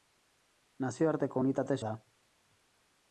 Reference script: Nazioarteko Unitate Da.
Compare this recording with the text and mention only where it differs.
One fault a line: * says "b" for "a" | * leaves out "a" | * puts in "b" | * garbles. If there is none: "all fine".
all fine